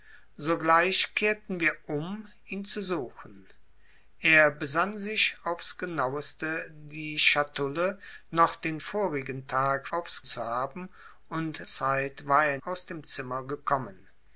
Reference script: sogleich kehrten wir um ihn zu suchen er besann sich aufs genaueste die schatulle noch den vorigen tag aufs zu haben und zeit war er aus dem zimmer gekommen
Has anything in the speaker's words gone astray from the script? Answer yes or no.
no